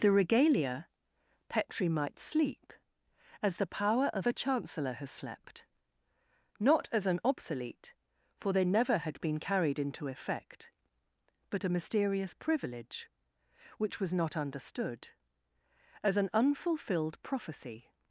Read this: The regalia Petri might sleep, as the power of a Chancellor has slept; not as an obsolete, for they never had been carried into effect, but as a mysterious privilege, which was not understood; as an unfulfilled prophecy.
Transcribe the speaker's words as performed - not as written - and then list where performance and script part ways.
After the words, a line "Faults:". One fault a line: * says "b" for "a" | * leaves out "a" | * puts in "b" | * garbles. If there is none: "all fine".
The regalia Petri might sleep, as the power of a Chancellor has slept; not as an obsolete, for they never had been carried into effect, but a mysterious privilege, which was not understood; as an unfulfilled prophecy.
Faults:
* leaves out "as"